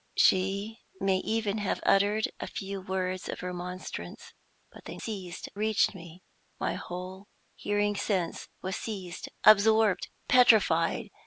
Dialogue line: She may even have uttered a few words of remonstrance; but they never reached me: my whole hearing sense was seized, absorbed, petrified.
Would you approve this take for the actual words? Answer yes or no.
no